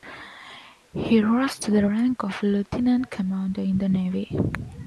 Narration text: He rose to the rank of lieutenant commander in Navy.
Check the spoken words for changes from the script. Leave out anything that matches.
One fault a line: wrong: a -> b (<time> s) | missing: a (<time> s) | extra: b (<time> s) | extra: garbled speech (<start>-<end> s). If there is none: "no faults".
extra: the (3.8 s)